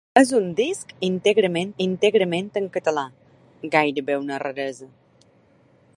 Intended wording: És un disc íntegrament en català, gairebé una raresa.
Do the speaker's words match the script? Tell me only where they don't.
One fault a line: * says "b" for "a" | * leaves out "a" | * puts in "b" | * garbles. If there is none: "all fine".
* puts in "íntegrament"